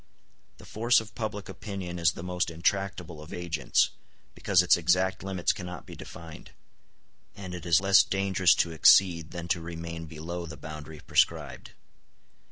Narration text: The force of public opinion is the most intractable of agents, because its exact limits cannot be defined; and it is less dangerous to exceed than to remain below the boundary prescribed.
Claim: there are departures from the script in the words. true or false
false